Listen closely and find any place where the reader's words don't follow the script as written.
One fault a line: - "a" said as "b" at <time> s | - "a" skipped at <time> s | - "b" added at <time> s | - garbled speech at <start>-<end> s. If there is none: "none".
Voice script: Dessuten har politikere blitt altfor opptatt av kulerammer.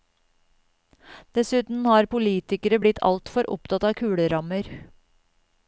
none